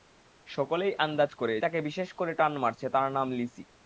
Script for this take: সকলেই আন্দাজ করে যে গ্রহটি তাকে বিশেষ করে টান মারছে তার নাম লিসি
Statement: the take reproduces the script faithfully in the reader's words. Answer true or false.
false